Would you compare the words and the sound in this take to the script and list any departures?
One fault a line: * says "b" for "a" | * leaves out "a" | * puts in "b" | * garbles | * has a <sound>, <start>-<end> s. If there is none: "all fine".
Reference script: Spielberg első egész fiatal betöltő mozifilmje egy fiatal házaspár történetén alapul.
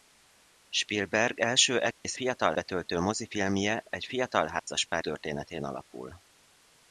* has a dropout, 1.9-2.0 s
* has a dropout, 4.6-4.7 s